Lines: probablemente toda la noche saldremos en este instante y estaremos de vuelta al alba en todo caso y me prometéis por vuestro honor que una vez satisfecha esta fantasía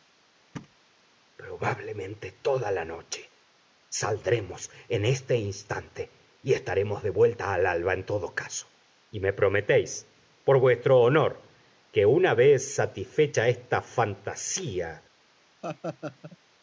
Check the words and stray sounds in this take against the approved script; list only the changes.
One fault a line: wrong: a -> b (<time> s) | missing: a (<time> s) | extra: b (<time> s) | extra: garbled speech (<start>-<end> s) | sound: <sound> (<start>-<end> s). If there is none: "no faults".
sound: thud (0.5-0.8 s)
sound: laugh (15.6-16.4 s)